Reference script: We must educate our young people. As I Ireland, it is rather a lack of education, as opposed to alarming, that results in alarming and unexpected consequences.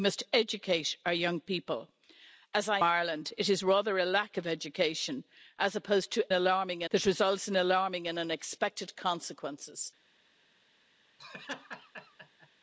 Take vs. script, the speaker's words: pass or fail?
pass